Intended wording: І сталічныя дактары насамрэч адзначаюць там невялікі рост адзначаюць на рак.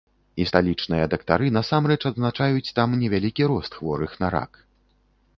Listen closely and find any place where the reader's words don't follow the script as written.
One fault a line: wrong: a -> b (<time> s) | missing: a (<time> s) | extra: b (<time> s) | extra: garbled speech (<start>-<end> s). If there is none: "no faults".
wrong: адзначаюць -> хворых (3.8 s)